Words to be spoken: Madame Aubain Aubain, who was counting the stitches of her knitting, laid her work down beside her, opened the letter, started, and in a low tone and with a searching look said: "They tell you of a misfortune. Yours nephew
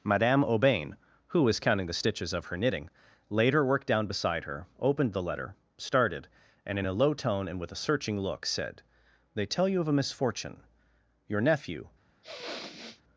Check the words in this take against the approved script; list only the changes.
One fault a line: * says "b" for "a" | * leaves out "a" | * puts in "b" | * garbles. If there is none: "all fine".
* leaves out "Aubain"
* says "Your" for "Yours"